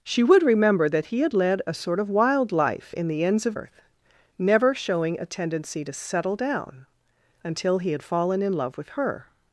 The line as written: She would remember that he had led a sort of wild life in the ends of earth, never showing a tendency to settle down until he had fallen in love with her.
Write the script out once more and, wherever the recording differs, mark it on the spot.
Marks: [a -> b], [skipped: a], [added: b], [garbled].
She would remember that he had led a sort of wild life in the ends of earth, never showing a tendency to settle down until he had fallen in love with her.